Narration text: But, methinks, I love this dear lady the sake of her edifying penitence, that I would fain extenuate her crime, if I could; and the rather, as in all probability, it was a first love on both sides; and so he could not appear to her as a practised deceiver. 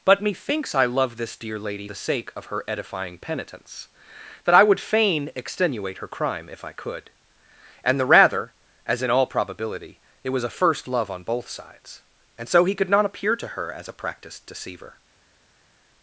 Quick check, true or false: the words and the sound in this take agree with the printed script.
true